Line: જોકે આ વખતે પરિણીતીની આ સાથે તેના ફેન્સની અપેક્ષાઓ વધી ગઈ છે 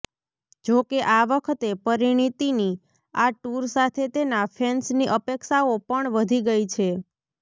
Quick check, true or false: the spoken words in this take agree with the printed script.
false